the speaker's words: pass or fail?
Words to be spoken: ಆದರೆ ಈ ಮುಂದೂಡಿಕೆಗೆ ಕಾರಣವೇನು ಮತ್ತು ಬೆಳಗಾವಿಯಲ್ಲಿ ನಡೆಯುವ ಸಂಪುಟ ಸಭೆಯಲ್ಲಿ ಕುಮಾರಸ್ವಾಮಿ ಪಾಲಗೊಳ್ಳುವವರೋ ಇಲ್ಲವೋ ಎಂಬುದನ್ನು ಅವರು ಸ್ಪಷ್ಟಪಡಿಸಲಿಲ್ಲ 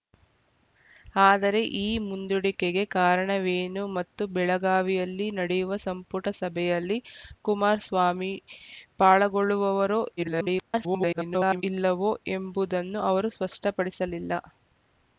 fail